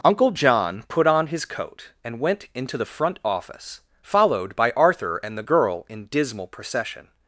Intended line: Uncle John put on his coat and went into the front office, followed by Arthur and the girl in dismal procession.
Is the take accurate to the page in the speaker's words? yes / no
yes